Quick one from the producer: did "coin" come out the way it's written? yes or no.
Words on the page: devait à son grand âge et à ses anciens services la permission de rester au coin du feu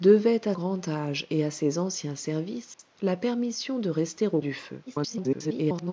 no